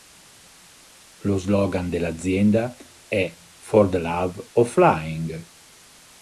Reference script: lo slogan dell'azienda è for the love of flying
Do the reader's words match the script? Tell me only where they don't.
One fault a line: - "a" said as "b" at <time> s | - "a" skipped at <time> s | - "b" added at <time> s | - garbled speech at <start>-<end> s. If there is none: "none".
none